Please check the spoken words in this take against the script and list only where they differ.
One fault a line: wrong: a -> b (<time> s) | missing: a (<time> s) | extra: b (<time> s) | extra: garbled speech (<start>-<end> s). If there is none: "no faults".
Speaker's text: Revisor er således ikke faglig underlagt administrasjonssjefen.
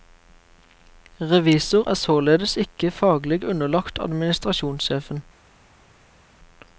no faults